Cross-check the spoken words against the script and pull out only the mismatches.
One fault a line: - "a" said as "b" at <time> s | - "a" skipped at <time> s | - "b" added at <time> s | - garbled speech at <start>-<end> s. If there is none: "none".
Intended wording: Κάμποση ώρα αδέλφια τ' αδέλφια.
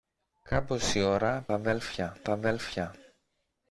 none